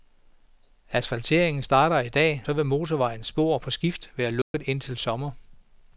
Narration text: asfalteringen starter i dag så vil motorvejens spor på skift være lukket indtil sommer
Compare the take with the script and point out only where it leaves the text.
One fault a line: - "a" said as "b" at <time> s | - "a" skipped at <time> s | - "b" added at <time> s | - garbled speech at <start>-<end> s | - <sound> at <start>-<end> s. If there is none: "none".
- dropout at 4.4-4.5 s